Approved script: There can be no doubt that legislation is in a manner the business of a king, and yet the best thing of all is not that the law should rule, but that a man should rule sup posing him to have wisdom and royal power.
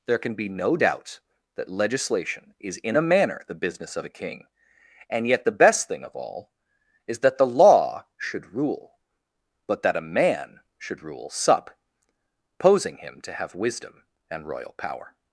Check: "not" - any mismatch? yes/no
yes